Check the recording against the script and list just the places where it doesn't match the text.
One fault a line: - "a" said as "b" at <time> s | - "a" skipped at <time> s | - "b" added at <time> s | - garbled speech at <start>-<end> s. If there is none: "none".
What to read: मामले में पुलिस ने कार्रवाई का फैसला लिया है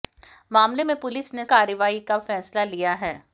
none